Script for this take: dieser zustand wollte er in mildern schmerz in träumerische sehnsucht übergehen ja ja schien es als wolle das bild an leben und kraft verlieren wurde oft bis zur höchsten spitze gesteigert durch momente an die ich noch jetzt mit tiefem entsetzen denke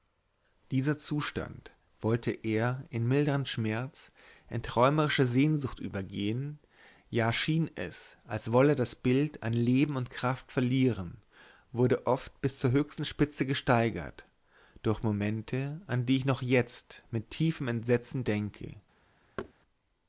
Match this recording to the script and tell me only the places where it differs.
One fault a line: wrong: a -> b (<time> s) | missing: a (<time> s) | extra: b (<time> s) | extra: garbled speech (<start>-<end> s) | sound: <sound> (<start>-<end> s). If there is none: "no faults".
missing: ja (7.3 s)
sound: thud (19.4-19.5 s)